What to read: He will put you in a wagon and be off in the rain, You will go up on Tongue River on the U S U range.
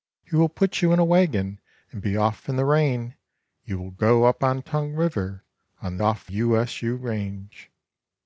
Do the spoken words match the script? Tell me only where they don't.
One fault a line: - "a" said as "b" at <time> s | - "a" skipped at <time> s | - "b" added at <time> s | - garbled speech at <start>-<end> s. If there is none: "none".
- "the" said as "off" at 6.0 s